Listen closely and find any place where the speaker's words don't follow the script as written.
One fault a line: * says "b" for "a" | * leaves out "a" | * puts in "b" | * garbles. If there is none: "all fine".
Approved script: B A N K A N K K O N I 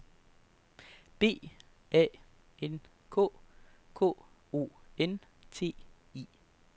* leaves out "A N"
* leaves out "K"
* puts in "T"